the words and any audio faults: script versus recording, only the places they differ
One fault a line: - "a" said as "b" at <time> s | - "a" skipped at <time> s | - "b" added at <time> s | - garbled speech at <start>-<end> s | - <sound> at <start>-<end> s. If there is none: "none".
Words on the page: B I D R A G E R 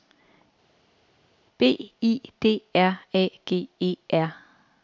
none